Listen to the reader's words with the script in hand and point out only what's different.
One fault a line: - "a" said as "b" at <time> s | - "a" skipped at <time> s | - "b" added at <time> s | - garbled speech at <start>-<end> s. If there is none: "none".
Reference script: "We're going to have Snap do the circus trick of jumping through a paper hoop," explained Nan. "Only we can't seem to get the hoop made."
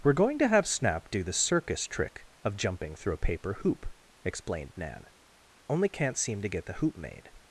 - "we" skipped at 5.9 s